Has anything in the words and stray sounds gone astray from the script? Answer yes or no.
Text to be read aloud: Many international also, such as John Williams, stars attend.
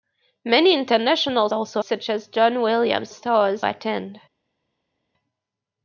no